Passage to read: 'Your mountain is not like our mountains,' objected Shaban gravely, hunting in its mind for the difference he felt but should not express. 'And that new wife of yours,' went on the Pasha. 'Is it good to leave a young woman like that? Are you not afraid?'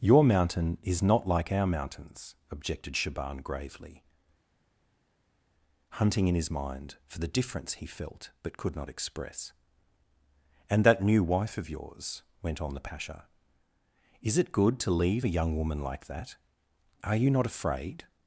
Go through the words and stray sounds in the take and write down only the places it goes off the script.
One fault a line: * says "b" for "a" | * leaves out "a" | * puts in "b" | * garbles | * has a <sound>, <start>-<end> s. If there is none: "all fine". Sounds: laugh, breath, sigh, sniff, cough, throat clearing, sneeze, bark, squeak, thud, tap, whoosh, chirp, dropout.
* says "his" for "its"
* says "could" for "should"